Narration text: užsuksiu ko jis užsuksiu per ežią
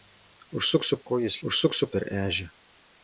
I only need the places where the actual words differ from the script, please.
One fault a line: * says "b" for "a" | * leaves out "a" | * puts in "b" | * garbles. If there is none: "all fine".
all fine